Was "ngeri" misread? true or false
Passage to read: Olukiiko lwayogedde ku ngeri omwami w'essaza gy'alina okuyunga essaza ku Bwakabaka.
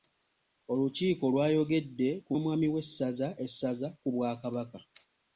true